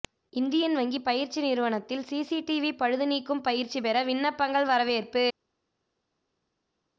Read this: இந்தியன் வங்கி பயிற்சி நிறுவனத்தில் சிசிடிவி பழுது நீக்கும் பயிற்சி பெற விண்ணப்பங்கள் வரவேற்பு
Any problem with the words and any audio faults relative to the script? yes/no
no